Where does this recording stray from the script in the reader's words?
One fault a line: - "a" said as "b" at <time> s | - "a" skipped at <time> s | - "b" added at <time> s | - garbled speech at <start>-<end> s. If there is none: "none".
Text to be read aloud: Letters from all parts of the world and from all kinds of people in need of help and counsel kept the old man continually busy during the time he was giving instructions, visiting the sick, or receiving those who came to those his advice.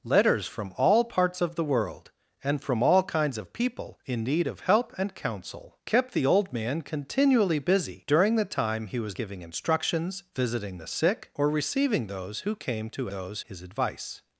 none